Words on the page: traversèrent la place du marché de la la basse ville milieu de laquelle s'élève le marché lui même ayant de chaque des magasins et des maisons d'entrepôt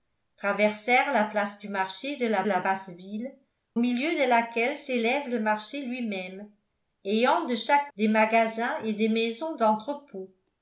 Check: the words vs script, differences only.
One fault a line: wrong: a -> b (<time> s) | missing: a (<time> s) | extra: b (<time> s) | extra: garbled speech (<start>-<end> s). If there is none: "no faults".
no faults